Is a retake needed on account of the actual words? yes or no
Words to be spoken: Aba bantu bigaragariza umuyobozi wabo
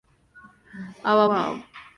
yes